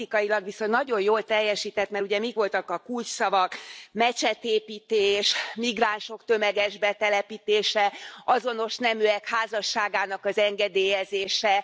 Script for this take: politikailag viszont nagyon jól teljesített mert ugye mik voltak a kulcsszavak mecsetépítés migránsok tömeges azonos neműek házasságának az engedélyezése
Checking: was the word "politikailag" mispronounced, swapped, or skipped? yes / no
no